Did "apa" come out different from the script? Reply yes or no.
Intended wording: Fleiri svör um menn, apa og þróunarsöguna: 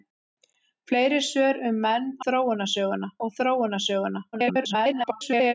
yes